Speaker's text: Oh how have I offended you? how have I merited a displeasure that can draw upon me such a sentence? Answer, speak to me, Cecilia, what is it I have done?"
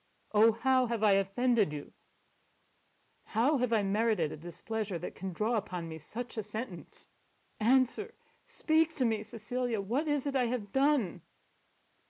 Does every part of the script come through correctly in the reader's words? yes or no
yes